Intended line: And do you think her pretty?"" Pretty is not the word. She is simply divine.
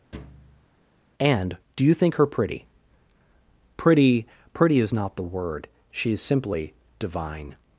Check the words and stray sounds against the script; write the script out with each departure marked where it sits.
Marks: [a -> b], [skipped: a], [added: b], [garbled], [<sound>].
[thud] And do you think her pretty?"" Pretty [added: pretty] is not the word. She is simply divine.